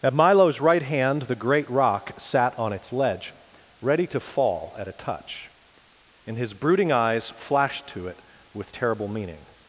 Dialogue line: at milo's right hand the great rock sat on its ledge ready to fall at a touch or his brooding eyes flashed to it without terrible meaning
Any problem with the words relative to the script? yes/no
yes